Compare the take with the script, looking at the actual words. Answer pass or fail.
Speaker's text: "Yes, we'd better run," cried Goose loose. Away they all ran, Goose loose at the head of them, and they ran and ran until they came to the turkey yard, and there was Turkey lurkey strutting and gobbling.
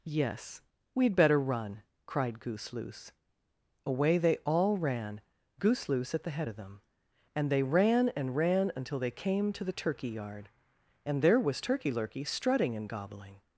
pass